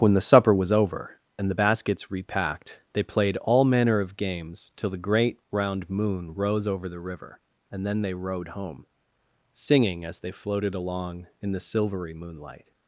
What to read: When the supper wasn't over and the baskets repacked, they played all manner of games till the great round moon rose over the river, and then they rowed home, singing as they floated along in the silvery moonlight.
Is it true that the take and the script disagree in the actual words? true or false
true